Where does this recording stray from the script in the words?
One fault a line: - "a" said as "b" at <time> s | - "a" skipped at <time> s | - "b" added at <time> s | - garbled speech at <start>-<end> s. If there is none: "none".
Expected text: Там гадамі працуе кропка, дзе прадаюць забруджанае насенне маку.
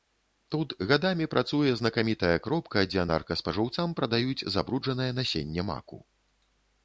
- "Там" said as "Тут" at 0.5 s
- "знакамітая" added at 1.8 s
- "наркаспажыўцам" added at 3.1 s